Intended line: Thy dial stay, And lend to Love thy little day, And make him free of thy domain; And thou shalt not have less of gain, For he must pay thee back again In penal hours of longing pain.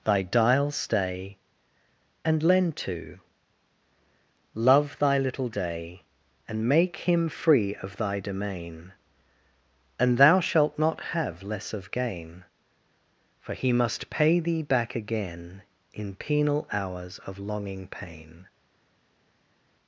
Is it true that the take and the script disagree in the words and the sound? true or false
false